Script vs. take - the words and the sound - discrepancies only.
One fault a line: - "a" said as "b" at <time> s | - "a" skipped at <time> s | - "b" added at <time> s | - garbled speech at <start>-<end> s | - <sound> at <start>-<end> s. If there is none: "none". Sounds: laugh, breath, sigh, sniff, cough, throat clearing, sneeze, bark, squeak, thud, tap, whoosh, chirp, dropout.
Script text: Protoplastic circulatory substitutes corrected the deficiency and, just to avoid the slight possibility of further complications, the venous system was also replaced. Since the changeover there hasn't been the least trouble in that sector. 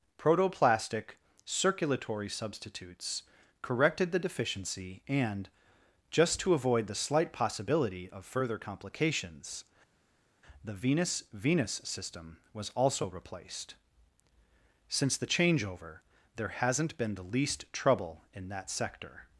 - "venous" added at 11.3 s